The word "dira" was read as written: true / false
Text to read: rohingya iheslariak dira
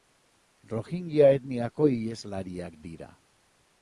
true